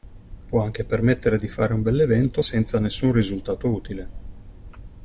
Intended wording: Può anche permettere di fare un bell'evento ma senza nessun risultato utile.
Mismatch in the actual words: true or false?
true